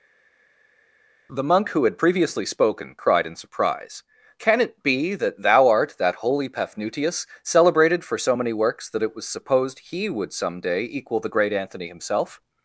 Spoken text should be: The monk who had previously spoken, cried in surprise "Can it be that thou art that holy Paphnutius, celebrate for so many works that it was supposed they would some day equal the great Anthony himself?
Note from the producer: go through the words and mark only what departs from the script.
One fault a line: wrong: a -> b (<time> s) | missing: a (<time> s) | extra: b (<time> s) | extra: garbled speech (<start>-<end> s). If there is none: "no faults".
wrong: celebrate -> celebrated (7.4 s)
wrong: they -> he (9.8 s)